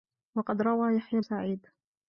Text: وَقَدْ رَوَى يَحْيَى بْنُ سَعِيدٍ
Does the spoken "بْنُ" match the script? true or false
false